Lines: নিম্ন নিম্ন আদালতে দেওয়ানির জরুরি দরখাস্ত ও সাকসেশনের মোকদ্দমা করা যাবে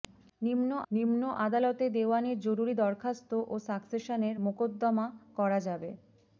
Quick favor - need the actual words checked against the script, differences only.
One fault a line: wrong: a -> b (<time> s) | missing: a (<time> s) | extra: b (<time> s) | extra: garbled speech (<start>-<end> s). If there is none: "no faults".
no faults